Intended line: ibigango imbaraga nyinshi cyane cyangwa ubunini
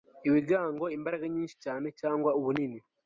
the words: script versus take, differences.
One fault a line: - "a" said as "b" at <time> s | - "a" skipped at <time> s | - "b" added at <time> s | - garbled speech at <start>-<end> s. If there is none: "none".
none